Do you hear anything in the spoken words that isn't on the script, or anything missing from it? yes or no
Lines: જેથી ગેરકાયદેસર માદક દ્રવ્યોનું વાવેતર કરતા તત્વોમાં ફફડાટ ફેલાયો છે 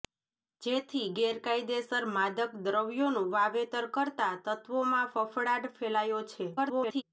yes